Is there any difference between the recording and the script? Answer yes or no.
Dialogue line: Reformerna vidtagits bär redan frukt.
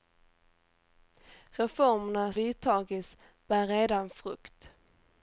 no